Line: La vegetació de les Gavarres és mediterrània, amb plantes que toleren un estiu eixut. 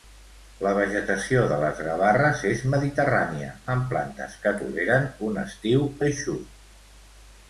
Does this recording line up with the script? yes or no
yes